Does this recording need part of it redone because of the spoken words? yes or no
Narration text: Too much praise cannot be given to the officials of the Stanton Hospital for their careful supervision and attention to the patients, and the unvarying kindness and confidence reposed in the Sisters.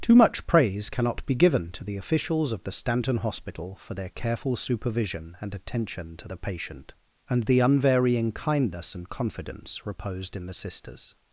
yes